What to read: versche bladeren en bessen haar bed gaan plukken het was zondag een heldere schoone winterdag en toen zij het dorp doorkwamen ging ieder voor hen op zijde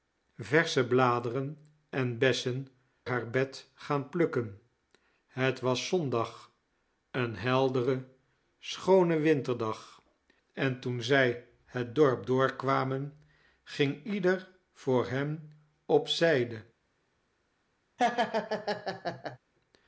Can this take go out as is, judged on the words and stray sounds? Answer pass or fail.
fail